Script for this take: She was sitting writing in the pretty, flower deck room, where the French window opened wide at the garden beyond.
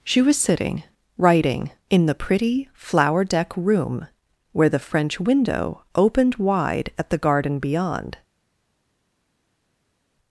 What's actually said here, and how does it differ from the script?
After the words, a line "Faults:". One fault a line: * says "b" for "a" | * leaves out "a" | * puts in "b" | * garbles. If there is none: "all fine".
She was sitting writing in the pretty, flower deck room, where the French window opened wide at the garden beyond.
Faults:
all fine